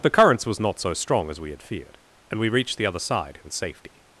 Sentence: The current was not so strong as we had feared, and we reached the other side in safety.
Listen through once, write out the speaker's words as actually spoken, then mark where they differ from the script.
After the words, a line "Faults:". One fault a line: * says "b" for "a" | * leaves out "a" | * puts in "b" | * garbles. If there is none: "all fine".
The currents was not so strong as we had feared, and we reached the other side in safety.
Faults:
* says "currents" for "current"